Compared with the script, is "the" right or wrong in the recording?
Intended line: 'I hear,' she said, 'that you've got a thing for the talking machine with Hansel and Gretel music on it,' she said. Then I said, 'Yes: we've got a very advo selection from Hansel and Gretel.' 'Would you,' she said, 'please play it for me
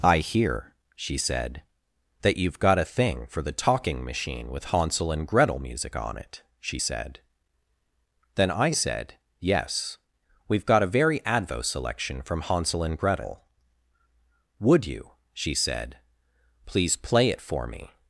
right